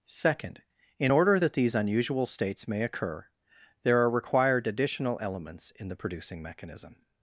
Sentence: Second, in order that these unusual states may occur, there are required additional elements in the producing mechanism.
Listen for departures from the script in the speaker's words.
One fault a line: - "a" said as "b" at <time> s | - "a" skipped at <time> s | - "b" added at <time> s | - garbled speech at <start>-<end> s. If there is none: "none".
none